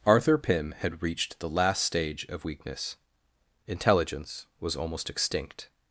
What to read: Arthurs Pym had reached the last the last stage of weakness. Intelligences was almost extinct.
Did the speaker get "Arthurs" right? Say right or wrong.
wrong